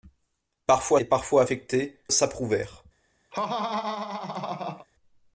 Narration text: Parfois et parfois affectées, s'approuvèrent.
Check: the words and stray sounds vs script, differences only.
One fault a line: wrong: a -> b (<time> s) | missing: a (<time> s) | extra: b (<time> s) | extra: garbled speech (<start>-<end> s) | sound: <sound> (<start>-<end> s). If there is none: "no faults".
sound: laugh (3.3-4.9 s)